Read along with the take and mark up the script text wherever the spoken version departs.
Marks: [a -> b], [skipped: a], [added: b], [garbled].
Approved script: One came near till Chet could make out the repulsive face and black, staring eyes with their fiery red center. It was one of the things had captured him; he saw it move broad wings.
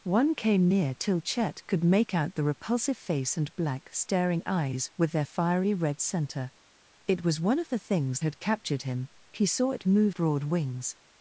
One came near till Chet could make out the repulsive face and black, staring eyes with their fiery red center. It was one of the things had captured him; he saw it move broad wings.